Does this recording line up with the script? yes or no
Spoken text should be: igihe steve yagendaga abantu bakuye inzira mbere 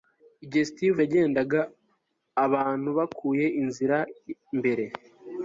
yes